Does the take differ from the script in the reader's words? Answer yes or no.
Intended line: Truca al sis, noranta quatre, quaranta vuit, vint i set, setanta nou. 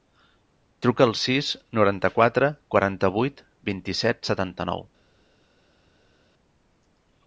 no